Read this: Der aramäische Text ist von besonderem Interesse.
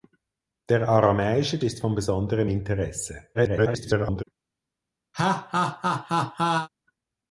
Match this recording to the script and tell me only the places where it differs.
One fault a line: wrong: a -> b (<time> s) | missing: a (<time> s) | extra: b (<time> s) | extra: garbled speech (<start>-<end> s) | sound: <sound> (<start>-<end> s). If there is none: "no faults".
missing: Text (1.6 s)
extra: garbled speech (3.3-4.2 s)
sound: laugh (5.1-6.7 s)